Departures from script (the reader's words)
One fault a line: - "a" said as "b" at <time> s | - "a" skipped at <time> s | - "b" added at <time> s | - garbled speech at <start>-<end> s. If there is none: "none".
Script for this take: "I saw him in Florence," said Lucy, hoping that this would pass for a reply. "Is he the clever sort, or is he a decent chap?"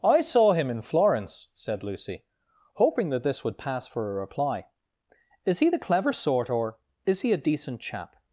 none